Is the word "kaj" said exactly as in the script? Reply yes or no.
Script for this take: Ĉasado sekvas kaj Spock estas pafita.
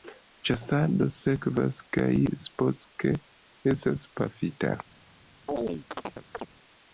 yes